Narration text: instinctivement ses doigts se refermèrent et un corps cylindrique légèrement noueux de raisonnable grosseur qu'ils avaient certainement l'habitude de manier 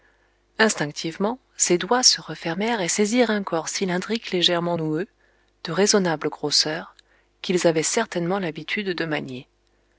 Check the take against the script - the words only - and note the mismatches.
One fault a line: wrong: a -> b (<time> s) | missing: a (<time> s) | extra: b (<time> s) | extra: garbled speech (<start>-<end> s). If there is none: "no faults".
extra: saisirent (2.9 s)